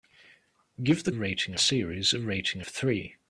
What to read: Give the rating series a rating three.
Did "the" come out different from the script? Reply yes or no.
no